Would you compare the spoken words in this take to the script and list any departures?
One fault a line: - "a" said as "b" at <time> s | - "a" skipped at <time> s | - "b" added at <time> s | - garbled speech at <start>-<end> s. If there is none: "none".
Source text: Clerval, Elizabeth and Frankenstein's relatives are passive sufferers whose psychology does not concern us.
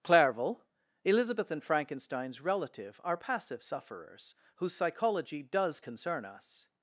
- "relatives" said as "relative" at 2.4 s
- "not" skipped at 5.8 s